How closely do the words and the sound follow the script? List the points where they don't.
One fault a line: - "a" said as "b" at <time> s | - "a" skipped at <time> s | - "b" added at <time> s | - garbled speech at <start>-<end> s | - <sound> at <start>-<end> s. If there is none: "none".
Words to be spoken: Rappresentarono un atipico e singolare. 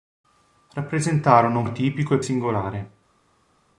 none